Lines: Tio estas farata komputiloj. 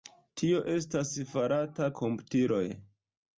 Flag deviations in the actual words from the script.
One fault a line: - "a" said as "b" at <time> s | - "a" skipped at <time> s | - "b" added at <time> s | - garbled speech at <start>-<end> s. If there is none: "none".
none